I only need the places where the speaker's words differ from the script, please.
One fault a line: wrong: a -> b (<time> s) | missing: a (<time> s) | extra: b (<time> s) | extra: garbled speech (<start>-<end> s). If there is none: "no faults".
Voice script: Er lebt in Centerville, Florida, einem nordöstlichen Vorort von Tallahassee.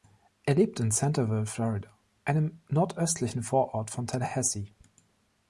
no faults